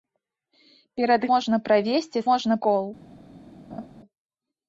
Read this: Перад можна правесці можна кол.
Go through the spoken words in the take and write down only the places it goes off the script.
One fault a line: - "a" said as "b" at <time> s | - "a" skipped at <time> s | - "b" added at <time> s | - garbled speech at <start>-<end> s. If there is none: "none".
none